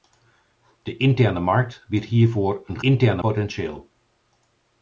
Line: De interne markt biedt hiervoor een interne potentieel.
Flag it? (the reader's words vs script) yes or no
no